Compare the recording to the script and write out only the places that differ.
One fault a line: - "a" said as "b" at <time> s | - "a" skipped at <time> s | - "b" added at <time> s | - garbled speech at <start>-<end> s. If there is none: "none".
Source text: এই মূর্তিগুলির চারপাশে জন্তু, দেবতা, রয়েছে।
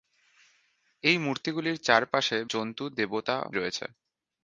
none